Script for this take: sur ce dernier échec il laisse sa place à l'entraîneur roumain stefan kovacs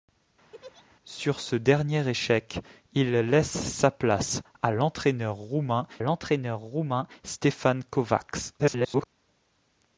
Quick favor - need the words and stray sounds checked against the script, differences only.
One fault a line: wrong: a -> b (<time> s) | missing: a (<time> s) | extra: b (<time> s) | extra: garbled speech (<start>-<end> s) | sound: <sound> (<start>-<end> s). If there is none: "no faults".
sound: laugh (0.5-0.9 s)
extra: l'entraîneur roumain (6.0 s)
extra: garbled speech (8.6-9.1 s)